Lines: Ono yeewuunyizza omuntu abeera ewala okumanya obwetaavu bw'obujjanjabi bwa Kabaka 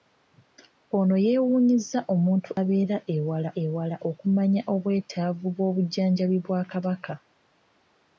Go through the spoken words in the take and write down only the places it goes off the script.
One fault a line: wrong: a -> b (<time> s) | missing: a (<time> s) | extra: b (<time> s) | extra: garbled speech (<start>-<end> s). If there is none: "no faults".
extra: ewala (3.6 s)